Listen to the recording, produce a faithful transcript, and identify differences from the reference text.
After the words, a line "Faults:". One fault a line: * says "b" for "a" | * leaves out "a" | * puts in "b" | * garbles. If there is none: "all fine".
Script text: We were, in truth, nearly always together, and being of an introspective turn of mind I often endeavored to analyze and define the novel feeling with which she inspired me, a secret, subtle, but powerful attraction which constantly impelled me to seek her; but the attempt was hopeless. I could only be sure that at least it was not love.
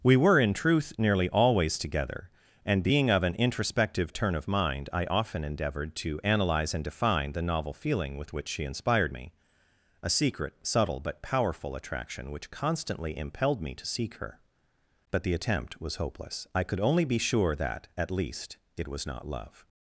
We were, in truth, nearly always together, and being of an introspective turn of mind I often endeavored to analyze and define the novel feeling with which she inspired me, a secret, subtle, but powerful attraction which constantly impelled me to seek her; but the attempt was hopeless. I could only be sure that at least it was not love.
Faults:
all fine